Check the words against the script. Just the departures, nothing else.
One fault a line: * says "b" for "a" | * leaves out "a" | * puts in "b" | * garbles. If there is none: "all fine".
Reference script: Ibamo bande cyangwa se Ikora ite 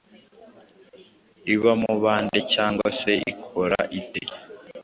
all fine